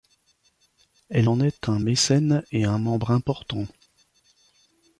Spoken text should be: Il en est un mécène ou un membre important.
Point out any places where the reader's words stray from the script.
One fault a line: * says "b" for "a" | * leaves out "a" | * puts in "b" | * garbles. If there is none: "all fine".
* says "Elle" for "Il"
* says "et" for "ou"